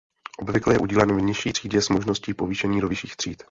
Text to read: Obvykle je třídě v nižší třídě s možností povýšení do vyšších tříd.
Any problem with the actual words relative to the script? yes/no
yes